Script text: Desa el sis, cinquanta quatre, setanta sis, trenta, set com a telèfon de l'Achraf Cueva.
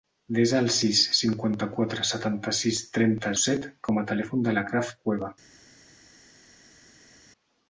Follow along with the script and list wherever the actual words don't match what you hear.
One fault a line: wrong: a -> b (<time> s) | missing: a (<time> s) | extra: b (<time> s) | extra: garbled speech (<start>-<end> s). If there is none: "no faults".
no faults